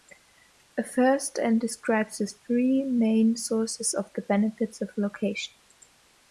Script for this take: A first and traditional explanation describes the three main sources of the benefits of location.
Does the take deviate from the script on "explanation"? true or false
true